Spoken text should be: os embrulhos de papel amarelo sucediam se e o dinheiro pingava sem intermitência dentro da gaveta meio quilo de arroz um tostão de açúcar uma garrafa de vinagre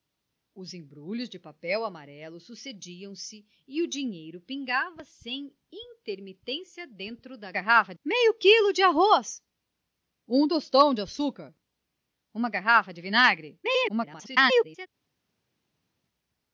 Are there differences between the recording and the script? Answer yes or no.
yes